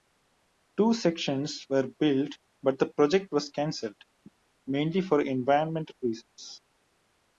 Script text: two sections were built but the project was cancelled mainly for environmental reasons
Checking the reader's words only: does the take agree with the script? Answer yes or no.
yes